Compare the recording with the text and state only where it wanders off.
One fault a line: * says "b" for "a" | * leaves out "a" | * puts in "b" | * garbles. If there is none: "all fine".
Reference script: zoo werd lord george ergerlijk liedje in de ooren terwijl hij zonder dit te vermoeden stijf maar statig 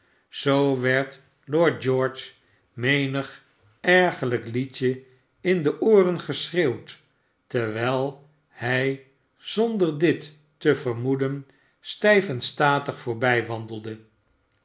* puts in "menig"
* puts in "geschreeuwd"
* says "en" for "maar"